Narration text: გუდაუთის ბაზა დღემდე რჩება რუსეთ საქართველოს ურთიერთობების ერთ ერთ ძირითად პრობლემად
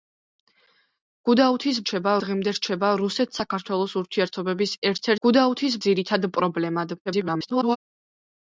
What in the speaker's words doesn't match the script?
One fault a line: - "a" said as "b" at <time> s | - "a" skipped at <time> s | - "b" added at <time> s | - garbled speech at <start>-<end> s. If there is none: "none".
- "ბაზა" said as "რჩება" at 1.8 s
- "ერთ" said as "გუდაუთის" at 5.3 s
- garbled speech at 7.1-7.8 s